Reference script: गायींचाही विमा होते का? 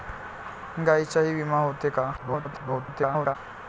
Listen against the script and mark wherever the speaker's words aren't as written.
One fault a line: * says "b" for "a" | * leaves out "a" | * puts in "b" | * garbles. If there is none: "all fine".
* garbles